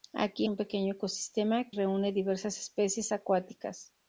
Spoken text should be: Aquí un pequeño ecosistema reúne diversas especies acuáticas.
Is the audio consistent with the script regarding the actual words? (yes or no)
yes